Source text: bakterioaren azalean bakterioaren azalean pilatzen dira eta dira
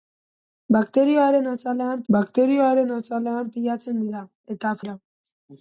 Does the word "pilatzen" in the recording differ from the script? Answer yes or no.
no